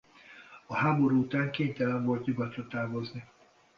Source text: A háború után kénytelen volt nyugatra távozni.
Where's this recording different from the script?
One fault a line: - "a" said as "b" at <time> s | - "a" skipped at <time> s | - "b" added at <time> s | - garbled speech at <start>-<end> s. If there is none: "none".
none